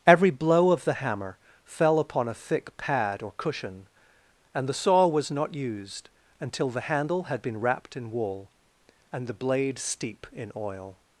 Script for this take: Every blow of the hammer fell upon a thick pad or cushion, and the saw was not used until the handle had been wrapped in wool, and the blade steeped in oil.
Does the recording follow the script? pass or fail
fail